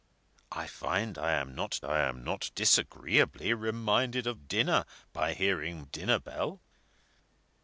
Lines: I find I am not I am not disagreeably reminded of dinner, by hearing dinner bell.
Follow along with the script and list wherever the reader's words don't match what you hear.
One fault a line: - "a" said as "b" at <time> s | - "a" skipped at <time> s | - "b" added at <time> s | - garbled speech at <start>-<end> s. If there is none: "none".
none